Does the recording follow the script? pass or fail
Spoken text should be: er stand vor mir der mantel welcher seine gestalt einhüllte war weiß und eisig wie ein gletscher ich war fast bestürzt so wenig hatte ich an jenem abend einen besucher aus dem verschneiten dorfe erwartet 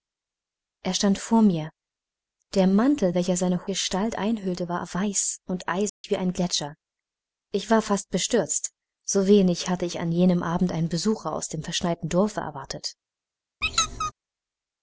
pass